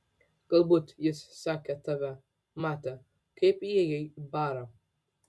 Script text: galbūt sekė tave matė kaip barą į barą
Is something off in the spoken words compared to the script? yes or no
yes